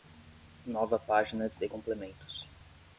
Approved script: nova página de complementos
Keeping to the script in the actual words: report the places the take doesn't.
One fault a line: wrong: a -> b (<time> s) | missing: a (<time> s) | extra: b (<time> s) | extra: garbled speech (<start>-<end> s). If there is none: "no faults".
no faults